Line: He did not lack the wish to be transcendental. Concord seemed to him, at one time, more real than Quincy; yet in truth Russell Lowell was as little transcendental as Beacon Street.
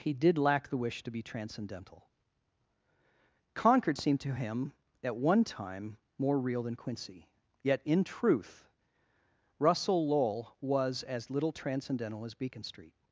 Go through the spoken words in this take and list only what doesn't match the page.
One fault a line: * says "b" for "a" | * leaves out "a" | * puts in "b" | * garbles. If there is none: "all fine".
* leaves out "not"